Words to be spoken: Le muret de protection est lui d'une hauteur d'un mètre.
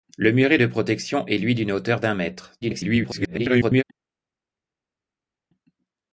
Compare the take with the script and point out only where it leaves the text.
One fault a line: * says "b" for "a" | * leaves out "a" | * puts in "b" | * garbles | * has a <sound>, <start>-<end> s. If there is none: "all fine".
* garbles